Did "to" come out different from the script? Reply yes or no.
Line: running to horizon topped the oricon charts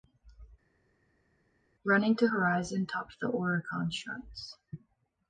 no